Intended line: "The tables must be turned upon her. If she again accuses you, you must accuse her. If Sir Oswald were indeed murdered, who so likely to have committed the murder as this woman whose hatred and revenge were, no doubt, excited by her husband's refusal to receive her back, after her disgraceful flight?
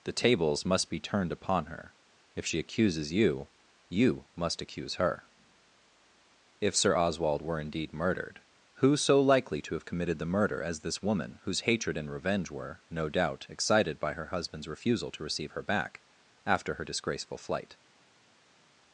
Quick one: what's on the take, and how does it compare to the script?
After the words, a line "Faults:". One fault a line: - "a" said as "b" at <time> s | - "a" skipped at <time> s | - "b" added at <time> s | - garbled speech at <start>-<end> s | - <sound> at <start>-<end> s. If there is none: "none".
"The tables must be turned upon her. If she accuses you, you must accuse her. If Sir Oswald were indeed murdered, who so likely to have committed the murder as this woman whose hatred and revenge were, no doubt, excited by her husband's refusal to receive her back, after her disgraceful flight?
Faults:
- "again" skipped at 2.6 s